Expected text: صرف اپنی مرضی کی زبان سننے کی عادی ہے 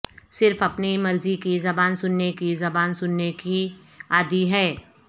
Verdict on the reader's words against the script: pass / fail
fail